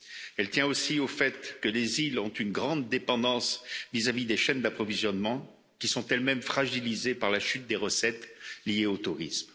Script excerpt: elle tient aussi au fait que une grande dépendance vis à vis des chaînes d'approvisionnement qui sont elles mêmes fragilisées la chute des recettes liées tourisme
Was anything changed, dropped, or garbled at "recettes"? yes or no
no